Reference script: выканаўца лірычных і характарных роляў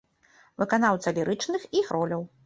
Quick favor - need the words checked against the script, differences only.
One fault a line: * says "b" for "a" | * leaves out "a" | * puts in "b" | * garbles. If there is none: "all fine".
* leaves out "характарных"